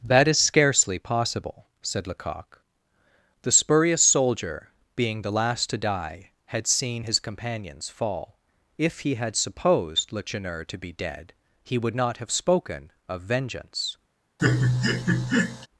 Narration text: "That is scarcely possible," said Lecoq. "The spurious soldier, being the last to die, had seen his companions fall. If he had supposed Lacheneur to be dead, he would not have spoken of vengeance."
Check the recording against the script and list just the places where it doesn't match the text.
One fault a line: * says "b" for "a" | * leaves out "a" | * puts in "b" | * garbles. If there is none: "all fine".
all fine